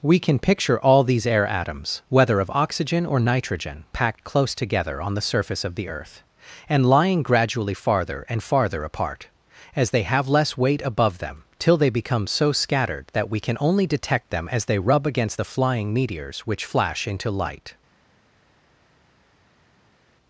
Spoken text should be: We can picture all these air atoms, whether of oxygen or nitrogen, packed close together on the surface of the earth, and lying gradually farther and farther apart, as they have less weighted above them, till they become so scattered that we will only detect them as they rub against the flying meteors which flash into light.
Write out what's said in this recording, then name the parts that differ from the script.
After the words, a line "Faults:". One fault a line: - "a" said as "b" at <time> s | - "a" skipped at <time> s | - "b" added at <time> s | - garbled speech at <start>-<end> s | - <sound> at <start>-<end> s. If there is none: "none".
We can picture all these air atoms, whether of oxygen or nitrogen, packed close together on the surface of the earth, and lying gradually farther and farther apart, as they have less weight above them, till they become so scattered that we can only detect them as they rub against the flying meteors which flash into light.
Faults:
- "weighted" said as "weight" at 10.6 s
- "will" said as "can" at 13.4 s